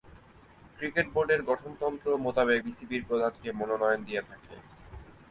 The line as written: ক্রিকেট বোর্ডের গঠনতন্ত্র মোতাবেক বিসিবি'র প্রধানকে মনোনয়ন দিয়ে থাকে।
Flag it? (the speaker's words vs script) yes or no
no